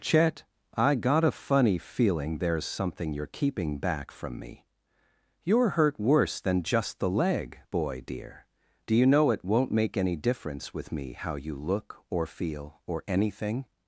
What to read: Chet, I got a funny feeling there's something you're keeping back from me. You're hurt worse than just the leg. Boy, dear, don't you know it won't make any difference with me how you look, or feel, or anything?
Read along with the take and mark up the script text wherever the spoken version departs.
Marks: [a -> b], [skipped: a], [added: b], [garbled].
Chet, I got a funny feeling there's something you're keeping back from me. You're hurt worse than just the leg. Boy, dear, [don't -> do] you know it won't make any difference with me how you look, or feel, or anything?